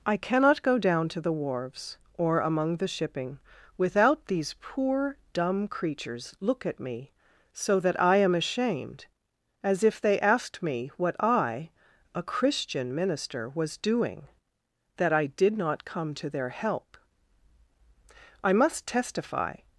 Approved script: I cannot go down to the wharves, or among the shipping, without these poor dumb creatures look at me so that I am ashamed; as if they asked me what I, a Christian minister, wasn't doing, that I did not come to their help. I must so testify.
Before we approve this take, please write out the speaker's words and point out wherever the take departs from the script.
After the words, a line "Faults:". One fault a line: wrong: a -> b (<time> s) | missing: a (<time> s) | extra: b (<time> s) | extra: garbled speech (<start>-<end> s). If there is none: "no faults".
I cannot go down to the wharves, or among the shipping, without these poor dumb creatures look at me so that I am ashamed; as if they asked me what I, a Christian minister, was doing, that I did not come to their help. I must testify.
Faults:
wrong: wasn't -> was (13.5 s)
missing: so (18.9 s)